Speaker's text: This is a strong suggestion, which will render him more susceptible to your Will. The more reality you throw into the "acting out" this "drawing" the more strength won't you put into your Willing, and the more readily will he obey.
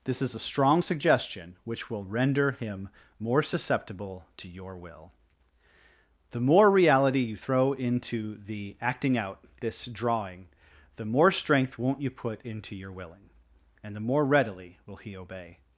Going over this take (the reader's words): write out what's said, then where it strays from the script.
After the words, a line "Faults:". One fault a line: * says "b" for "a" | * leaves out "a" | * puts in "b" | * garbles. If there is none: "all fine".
This is a strong suggestion, which will render him more susceptible to your Will. The more reality you throw into the "acting out" this "drawing" the more strength won't you put into your Willing, and the more readily will he obey.
Faults:
all fine